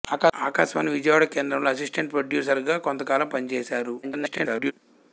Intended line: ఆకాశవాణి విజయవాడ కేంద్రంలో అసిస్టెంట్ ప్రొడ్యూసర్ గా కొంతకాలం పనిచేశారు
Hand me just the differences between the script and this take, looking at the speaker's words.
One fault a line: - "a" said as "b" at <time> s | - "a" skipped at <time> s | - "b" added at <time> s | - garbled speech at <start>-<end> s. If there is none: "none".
- garbled speech at 4.0-4.7 s